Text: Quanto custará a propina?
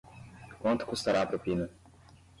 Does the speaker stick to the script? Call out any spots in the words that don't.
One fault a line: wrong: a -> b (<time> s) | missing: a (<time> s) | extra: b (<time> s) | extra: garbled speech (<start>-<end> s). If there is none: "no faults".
no faults